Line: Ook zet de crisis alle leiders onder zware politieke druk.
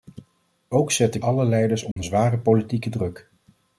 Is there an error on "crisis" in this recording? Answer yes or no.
yes